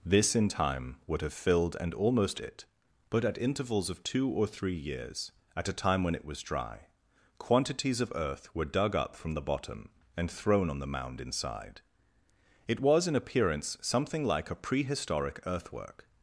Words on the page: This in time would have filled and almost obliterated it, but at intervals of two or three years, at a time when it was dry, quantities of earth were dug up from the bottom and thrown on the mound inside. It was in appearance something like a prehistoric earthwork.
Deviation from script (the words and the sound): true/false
true